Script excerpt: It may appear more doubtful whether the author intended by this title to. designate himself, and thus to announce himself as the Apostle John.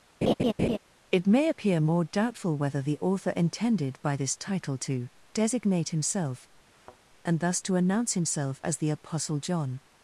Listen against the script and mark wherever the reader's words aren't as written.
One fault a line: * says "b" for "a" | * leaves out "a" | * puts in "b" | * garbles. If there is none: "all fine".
all fine